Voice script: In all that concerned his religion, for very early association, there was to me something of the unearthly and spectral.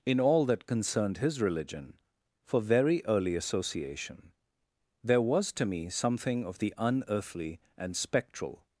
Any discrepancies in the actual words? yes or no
no